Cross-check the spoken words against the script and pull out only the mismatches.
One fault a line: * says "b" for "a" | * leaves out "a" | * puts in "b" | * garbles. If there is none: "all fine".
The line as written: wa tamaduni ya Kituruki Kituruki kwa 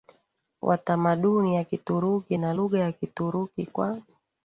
* puts in "na lugha ya"